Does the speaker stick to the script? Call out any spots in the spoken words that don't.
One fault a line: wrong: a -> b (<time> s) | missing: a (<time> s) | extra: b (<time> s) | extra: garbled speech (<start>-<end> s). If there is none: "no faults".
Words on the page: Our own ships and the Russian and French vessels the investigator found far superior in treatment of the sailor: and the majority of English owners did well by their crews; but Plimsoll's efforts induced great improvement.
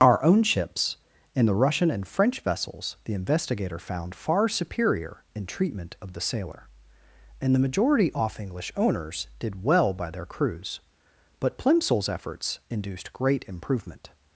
wrong: of -> off (8.1 s)